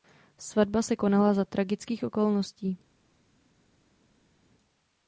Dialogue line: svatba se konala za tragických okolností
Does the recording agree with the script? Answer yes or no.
yes